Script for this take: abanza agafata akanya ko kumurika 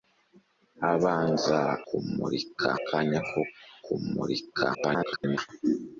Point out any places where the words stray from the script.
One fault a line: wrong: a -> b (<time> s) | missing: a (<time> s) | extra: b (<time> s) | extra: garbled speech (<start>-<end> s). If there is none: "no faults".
wrong: agafata -> kumurika (1.9 s)
extra: garbled speech (4.7-5.4 s)